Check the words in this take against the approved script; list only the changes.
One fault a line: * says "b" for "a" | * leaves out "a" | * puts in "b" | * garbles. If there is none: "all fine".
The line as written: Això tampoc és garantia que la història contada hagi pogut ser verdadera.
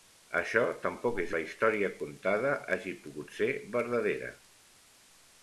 * leaves out "garantia que"